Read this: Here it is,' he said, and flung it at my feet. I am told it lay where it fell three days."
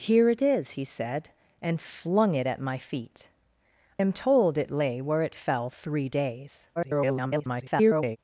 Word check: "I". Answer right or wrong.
wrong